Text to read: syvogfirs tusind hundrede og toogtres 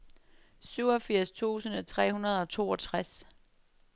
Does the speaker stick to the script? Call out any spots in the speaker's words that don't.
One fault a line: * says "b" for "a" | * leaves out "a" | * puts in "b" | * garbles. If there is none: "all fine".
* puts in "tre"